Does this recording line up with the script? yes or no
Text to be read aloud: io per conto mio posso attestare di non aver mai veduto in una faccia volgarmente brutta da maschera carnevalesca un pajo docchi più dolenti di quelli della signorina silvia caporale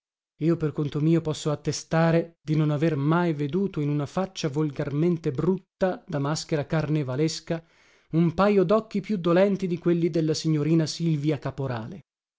yes